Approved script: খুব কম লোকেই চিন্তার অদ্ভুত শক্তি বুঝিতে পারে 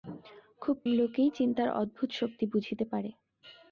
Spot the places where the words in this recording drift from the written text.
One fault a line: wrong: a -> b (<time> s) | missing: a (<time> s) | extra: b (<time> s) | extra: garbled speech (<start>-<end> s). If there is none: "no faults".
missing: কম (0.8 s)